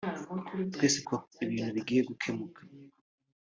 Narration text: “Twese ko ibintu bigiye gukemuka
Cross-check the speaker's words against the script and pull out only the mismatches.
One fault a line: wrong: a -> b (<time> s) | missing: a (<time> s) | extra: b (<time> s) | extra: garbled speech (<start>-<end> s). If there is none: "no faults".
no faults